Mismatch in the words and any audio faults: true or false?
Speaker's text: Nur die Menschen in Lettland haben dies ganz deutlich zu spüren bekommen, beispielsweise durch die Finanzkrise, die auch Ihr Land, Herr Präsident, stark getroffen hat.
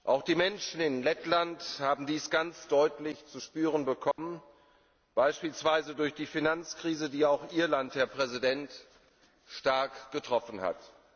true